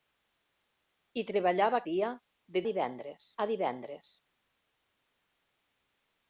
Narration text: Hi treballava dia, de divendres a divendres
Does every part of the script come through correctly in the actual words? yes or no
yes